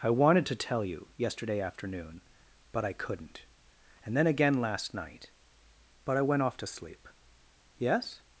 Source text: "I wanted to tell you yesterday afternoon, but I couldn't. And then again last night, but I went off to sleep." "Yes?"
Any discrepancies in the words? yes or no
no